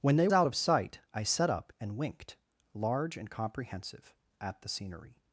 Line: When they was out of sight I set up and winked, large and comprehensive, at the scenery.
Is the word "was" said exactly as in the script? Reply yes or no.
no